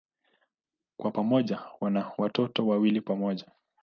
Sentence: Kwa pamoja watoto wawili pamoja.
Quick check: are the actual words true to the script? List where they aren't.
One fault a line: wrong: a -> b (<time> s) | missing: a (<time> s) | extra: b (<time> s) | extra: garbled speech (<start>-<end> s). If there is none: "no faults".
extra: wana (1.8 s)